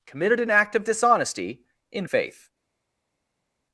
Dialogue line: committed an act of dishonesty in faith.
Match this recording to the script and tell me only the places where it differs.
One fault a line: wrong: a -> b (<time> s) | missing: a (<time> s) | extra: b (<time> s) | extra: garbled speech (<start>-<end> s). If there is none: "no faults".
no faults